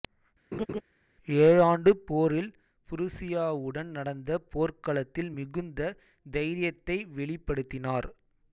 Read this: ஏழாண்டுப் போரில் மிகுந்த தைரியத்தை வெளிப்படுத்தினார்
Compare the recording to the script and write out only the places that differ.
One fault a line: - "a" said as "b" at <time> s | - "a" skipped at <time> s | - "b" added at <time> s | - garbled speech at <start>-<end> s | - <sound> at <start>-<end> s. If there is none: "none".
- laugh at 0.5-0.8 s
- "புருசியாவுடன் நடந்த போர்க்களத்தில்" added at 2.9 s